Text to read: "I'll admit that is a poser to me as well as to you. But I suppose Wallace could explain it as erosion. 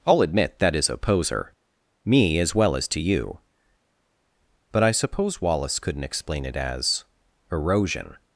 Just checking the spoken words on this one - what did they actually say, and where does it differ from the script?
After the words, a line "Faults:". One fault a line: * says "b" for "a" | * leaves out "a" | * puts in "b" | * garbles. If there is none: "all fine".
"I'll admit that is a poser me as well as to you. But I suppose Wallace couldn't explain it as erosion.
Faults:
* leaves out "to"
* says "couldn't" for "could"